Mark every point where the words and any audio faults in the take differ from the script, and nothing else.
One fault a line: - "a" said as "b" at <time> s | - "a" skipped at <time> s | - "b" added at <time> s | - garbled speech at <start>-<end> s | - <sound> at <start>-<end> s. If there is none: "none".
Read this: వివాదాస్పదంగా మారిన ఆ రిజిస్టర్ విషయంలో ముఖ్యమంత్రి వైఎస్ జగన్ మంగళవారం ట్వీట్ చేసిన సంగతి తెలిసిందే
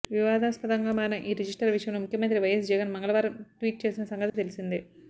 - "ఆ" said as "ఈ" at 1.2 s
- dropout at 4.3-4.3 s